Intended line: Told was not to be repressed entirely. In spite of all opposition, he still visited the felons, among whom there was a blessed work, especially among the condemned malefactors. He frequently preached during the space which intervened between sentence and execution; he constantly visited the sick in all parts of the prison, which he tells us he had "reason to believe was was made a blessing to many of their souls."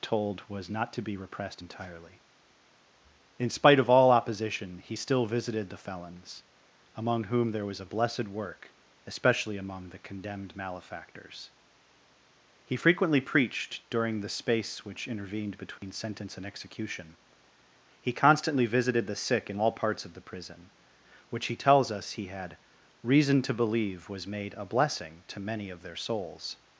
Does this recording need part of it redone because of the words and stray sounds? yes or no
yes